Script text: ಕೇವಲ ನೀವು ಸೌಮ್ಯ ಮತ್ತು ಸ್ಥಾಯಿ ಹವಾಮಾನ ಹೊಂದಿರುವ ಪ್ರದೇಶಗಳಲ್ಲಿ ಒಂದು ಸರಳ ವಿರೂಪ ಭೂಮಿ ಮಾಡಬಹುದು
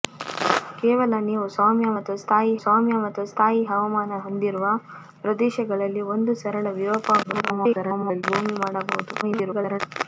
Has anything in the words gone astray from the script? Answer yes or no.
yes